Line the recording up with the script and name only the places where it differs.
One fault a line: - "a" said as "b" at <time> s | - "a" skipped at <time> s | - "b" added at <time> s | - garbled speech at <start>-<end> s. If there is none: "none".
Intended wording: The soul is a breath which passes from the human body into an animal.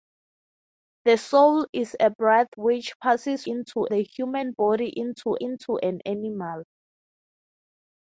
- "from" said as "into" at 3.5 s
- "into" added at 5.4 s